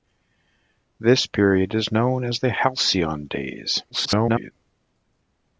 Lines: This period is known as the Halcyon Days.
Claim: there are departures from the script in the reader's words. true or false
true